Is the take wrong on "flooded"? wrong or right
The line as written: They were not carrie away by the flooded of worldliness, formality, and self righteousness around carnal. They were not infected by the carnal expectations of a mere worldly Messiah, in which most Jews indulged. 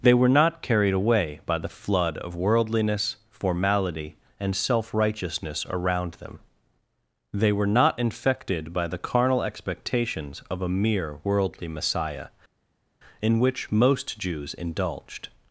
wrong